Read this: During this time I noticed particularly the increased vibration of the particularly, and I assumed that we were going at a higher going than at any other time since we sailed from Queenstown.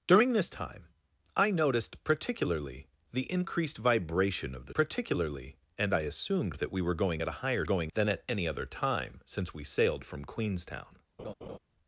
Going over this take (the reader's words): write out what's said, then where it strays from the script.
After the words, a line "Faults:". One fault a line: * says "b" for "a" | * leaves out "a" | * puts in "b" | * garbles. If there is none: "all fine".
During this time I noticed particularly the increased vibration of the particularly, and I assumed that we were going at a higher going than at any other time since we sailed from Queenstown.
Faults:
all fine